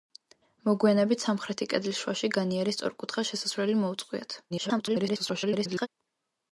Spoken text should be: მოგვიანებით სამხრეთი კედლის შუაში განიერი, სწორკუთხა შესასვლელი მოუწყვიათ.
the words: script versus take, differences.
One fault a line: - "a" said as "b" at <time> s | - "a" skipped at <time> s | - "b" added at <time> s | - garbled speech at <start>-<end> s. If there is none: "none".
- garbled speech at 4.5-5.9 s